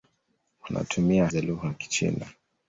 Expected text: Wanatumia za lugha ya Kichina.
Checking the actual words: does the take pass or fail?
pass